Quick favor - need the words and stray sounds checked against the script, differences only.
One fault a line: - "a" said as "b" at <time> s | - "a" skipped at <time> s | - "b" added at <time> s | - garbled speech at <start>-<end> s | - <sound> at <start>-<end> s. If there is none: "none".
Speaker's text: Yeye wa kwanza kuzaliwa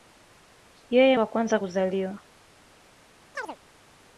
- chirp at 3.3-3.6 s